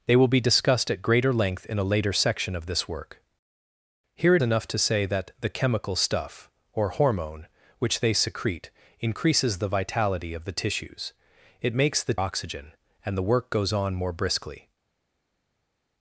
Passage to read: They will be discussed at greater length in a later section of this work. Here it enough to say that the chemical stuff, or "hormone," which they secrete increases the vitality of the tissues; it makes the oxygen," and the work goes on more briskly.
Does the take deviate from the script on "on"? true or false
false